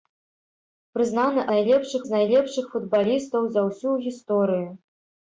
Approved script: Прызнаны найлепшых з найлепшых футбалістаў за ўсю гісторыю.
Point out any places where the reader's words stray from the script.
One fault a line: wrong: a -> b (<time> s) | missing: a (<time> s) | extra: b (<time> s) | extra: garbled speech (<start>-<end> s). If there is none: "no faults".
no faults